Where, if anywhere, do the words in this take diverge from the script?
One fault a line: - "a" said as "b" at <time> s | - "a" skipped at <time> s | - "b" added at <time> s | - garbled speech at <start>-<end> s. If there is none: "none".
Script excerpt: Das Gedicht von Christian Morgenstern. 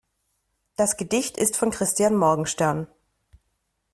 - "ist" added at 1.4 s